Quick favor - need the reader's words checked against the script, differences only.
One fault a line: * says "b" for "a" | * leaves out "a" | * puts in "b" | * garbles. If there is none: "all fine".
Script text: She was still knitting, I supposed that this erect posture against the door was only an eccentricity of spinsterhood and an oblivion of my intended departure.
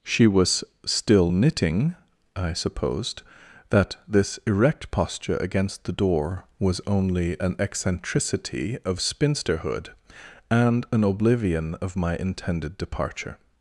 all fine